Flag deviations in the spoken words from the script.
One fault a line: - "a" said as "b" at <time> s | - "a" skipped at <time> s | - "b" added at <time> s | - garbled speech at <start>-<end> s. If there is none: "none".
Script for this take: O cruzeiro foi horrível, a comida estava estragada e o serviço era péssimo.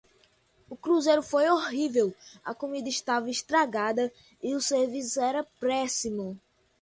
none